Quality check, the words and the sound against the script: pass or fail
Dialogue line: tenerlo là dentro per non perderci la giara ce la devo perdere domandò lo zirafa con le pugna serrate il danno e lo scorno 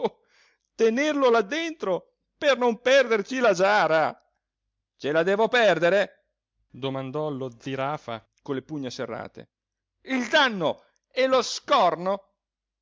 pass